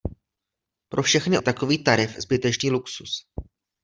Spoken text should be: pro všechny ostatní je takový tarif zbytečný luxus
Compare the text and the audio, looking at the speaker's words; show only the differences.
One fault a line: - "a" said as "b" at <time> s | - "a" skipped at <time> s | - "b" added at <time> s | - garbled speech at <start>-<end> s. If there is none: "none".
- "ostatní" skipped at 1.4 s